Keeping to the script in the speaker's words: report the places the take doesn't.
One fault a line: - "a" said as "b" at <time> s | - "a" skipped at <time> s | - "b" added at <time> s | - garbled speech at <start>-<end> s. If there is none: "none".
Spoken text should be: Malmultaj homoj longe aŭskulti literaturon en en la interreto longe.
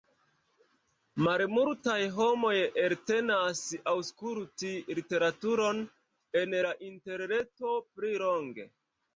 - "longe" said as "eltenas" at 2.9 s
- "en" skipped at 6.6 s
- "pli" added at 8.0 s